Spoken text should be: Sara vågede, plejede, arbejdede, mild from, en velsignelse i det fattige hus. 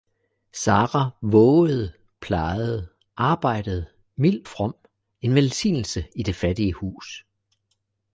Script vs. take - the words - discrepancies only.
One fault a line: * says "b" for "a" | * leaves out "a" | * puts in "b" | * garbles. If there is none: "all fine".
all fine